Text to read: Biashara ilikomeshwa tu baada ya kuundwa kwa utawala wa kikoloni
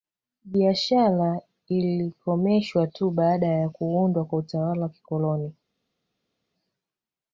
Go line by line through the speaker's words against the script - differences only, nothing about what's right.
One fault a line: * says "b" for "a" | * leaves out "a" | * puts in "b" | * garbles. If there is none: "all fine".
all fine